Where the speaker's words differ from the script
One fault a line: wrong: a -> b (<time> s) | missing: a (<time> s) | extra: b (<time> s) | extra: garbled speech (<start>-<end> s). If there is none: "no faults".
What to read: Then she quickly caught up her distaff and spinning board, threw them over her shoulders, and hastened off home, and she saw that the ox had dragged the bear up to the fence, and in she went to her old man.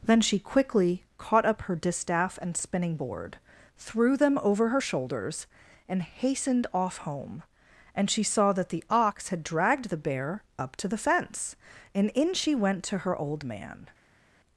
no faults